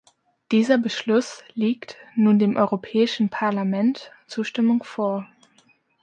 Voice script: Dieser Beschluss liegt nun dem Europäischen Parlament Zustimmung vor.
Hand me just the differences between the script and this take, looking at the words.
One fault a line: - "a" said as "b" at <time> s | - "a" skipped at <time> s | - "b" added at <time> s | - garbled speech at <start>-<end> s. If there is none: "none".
none